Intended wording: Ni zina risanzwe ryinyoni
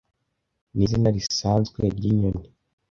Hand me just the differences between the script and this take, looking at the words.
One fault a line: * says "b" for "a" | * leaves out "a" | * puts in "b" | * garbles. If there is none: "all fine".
all fine